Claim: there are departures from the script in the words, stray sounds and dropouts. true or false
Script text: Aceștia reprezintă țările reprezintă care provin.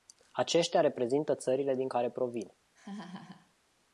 true